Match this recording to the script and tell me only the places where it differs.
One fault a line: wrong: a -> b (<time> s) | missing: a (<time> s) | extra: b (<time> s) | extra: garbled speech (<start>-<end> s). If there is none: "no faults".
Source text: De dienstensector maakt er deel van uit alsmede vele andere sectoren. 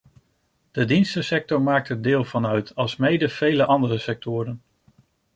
no faults